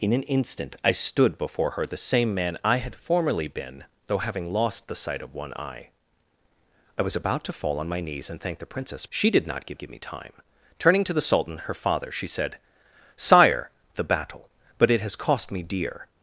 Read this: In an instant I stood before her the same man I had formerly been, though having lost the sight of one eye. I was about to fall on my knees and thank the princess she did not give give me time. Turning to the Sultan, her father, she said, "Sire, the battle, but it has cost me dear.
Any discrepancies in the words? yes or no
no